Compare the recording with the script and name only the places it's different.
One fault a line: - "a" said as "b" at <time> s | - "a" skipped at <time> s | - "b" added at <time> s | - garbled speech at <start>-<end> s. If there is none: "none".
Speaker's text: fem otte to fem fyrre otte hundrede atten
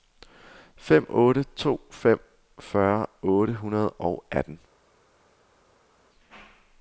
- "og" added at 3.9 s